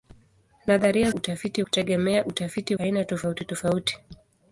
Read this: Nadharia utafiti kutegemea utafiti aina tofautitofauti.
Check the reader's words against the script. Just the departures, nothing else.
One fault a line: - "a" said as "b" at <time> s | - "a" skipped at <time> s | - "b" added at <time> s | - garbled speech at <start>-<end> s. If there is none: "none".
none